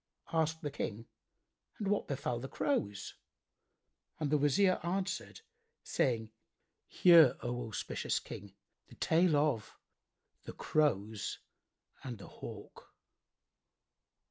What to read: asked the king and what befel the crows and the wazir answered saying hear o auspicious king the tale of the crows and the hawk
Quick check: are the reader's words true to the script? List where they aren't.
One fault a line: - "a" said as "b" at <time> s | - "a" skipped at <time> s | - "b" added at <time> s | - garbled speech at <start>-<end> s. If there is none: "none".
none